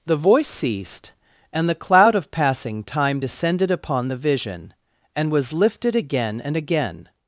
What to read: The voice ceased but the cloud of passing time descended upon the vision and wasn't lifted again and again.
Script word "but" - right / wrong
wrong